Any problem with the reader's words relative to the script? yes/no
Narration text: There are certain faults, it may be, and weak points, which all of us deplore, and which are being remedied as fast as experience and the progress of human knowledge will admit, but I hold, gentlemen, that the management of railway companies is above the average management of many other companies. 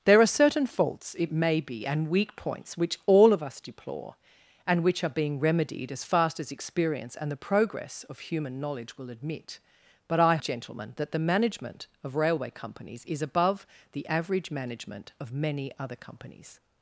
yes